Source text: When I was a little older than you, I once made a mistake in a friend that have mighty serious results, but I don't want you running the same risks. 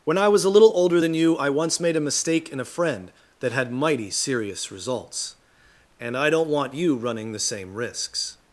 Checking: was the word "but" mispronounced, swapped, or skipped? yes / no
yes